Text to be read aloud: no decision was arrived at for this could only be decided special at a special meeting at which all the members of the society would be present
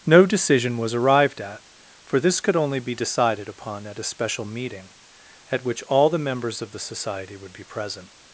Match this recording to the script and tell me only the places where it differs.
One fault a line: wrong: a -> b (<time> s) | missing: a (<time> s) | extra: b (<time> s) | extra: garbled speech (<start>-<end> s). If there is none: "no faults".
wrong: special -> upon (3.5 s)